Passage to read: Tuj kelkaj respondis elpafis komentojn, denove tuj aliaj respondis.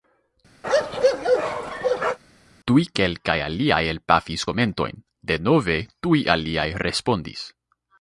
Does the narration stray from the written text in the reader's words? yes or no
yes